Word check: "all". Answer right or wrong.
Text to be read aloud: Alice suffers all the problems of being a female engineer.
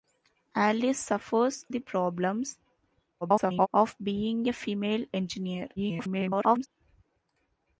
wrong